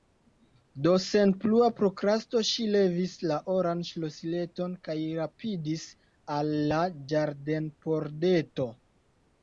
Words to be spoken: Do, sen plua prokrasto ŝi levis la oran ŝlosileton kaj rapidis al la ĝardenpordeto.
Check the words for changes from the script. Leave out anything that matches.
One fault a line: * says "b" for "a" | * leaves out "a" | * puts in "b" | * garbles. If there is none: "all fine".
all fine